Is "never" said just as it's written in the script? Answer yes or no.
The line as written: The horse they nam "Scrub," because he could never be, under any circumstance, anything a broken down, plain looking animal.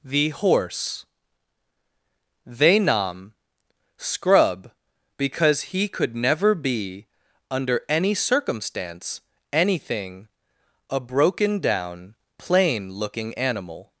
yes